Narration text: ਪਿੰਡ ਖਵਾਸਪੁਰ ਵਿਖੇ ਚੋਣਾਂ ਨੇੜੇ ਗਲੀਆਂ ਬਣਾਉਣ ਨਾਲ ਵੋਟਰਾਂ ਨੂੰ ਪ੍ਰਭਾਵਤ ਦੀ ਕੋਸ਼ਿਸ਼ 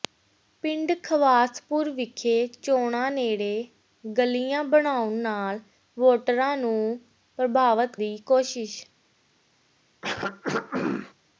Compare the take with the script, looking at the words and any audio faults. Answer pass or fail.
fail